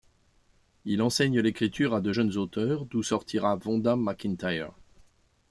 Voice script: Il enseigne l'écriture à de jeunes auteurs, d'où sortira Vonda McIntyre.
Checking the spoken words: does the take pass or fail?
pass